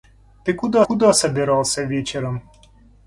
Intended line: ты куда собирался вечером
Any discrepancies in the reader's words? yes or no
yes